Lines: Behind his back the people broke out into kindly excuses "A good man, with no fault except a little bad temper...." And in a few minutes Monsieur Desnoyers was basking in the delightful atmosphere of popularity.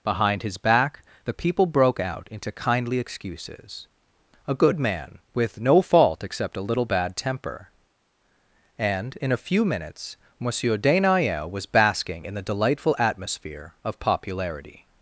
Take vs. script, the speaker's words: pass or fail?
pass